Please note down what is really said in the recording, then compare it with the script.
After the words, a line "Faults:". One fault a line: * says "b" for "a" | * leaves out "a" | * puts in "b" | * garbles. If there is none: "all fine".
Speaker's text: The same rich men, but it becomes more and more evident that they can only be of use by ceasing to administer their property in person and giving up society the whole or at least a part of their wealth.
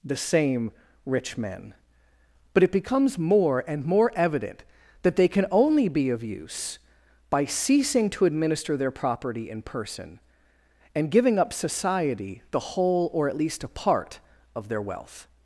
The same rich men, but it becomes more and more evident that they can only be of use by ceasing to administer their property in person and giving up society the whole or at least a part of their wealth.
Faults:
all fine